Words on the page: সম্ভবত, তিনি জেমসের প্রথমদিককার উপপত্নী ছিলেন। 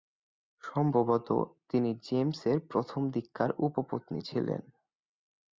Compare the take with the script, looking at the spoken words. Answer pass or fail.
pass